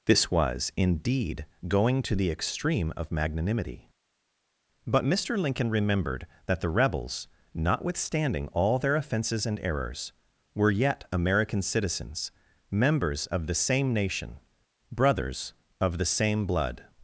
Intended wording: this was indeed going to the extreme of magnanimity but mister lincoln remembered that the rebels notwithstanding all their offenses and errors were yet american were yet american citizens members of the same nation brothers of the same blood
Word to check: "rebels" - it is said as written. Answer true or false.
true